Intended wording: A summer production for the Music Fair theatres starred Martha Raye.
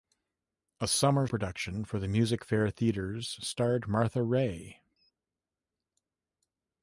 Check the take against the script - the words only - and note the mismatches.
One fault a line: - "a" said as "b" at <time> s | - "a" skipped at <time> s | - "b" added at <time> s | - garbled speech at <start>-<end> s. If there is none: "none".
none